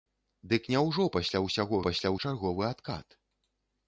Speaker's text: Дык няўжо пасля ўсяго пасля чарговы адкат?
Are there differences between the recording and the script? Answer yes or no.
no